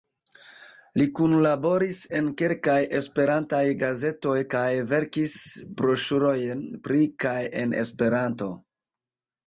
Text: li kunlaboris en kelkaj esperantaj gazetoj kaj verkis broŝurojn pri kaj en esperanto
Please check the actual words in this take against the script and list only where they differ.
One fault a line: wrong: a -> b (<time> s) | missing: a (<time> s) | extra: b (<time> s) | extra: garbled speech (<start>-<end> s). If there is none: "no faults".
no faults